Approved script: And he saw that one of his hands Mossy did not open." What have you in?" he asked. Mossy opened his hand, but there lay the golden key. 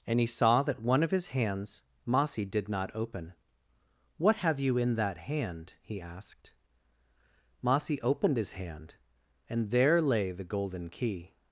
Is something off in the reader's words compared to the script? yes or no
yes